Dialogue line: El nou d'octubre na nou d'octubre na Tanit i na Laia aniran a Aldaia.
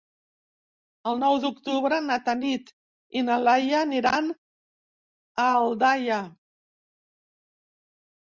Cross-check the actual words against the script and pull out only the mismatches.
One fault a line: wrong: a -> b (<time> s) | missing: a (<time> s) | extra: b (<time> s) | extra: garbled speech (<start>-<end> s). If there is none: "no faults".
missing: nou d'octubre na (2.2 s)